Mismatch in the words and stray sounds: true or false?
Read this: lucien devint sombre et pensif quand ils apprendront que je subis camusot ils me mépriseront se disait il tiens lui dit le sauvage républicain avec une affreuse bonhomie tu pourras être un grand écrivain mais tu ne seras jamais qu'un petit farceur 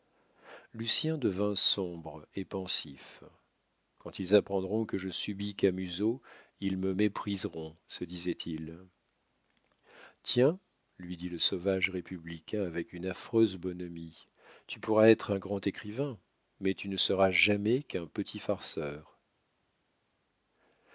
false